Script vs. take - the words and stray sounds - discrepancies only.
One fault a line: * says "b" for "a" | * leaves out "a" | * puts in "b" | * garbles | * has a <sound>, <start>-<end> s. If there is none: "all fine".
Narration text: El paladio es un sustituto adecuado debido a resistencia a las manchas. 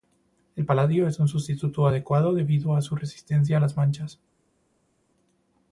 * puts in "su"